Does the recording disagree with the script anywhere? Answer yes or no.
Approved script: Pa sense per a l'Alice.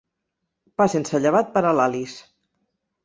yes